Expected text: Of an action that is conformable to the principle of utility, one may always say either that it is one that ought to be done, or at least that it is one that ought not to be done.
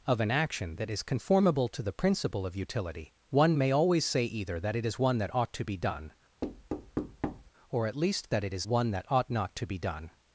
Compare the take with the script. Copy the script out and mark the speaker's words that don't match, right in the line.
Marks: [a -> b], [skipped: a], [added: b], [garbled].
Of an action that is conformable to the principle of utility, one may always say either that it is one that ought to be done, or at least that it is one that ought not to be done.